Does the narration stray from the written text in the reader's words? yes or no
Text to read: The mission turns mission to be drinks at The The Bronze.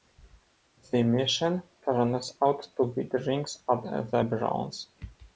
yes